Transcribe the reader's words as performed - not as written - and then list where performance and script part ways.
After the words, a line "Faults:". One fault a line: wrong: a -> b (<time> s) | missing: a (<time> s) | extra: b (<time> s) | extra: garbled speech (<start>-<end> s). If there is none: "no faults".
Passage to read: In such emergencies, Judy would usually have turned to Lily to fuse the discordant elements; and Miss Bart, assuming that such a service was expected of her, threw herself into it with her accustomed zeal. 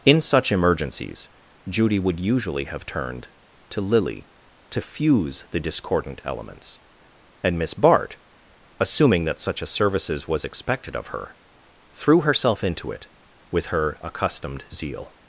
In such emergencies, Judy would usually have turned to Lily to fuse the discordant elements; and Miss Bart, assuming that such a services was expected of her, threw herself into it with her accustomed zeal.
Faults:
wrong: service -> services (9.7 s)